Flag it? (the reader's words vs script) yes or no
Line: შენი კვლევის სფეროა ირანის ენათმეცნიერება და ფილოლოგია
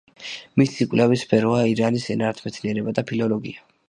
yes